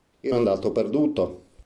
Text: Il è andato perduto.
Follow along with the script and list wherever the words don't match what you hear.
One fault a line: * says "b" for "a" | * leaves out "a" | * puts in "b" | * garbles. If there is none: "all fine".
all fine